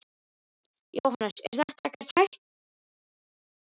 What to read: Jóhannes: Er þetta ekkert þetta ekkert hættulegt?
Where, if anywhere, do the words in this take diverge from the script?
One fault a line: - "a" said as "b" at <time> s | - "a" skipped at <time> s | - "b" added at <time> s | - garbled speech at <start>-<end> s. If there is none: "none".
- "þetta ekkert" skipped at 2.1 s